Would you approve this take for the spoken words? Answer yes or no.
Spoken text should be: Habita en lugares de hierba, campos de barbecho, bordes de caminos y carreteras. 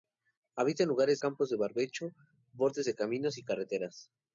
no